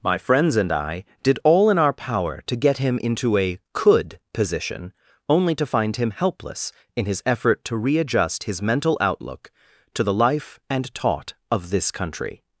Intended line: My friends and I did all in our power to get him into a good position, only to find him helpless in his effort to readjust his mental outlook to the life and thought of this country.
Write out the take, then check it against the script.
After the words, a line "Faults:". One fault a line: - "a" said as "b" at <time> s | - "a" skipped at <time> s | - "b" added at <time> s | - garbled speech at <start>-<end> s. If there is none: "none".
My friends and I did all in our power to get him into a could position, only to find him helpless in his effort to readjust his mental outlook to the life and taught of this country.
Faults:
- "good" said as "could" at 3.7 s
- "thought" said as "taught" at 10.9 s